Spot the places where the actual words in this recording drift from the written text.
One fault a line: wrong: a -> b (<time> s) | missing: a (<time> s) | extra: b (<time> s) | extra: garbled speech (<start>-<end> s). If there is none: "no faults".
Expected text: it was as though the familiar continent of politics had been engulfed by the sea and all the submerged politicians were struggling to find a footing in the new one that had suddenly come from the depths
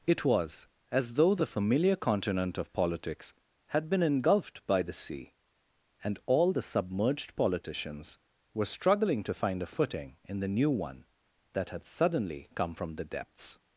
no faults